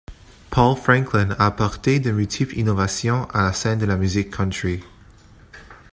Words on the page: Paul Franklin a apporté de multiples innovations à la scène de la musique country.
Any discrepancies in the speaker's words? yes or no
no